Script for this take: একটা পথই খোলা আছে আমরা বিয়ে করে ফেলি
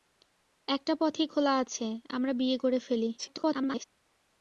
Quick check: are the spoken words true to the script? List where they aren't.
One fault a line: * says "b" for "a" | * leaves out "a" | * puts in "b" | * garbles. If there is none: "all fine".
* garbles